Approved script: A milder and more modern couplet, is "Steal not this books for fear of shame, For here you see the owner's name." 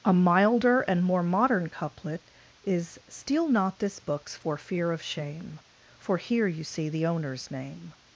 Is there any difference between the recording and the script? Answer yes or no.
no